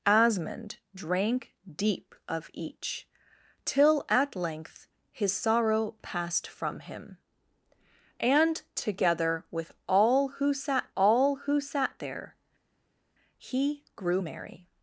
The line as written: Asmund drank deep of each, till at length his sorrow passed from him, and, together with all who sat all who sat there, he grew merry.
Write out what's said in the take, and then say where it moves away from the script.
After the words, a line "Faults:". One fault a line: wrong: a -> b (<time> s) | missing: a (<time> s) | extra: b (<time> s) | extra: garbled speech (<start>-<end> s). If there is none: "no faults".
Asmund drank deep of each, till at length his sorrow passed from him, and, together with all who sat all who sat there, he grew merry.
Faults:
no faults